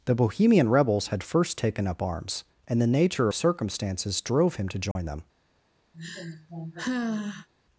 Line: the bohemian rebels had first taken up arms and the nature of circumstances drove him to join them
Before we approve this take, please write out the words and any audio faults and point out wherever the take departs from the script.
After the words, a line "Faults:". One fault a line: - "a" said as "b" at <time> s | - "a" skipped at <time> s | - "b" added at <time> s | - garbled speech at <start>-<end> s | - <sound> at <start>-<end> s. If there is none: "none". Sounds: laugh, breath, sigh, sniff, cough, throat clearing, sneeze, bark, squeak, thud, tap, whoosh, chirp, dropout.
the bohemian rebels had first taken up arms and the nature circumstances drove him to join them
Faults:
- "of" skipped at 3.3 s
- dropout at 4.9-5.0 s
- sigh at 5.9-7.5 s